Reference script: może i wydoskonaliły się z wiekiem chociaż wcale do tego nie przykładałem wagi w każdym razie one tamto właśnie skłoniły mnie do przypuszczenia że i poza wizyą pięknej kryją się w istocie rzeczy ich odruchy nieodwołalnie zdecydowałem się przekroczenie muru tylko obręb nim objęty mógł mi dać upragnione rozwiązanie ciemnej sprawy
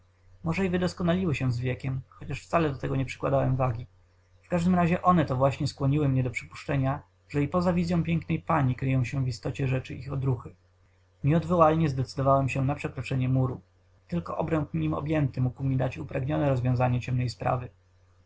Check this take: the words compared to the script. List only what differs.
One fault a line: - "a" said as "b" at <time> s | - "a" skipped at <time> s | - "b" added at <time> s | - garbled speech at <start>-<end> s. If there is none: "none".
- "tamto" said as "to" at 5.3 s
- "pani" added at 8.4 s
- "na" added at 12.6 s